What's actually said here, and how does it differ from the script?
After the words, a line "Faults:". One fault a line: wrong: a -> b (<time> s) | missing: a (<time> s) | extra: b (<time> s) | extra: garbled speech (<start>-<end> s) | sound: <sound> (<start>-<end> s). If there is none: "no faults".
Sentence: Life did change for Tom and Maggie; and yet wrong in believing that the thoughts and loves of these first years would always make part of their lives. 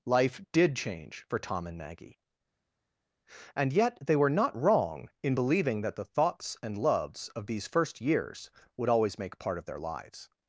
Life did change for Tom and Maggie; and yet they were not wrong in believing that the thoughts and loves of these first years would always make part of their lives.
Faults:
extra: they were not (4.0 s)